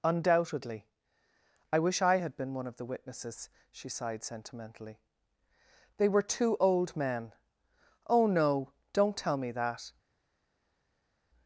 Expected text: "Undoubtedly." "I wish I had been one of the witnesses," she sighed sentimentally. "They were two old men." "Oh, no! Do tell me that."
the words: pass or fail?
fail